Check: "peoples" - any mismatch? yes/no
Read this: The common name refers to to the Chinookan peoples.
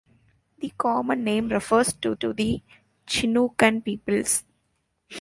no